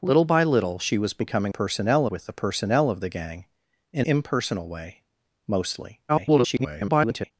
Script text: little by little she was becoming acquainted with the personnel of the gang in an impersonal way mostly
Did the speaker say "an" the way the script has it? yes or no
no